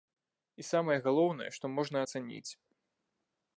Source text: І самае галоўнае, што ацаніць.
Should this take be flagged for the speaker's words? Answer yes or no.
yes